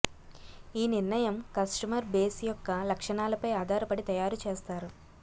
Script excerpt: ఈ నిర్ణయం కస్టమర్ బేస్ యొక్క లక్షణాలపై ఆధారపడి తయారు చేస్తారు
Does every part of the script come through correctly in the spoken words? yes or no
yes